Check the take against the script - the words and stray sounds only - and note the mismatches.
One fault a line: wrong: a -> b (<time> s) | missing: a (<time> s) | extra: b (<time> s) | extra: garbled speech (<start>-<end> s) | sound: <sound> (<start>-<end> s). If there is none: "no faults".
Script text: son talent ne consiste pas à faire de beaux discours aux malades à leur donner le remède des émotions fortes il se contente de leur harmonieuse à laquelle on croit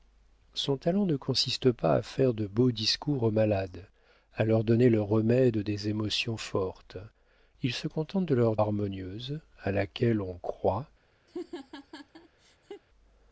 sound: laugh (11.3-12.8 s)